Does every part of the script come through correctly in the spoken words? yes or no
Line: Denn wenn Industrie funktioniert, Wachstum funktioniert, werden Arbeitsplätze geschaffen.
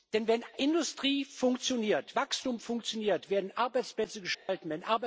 yes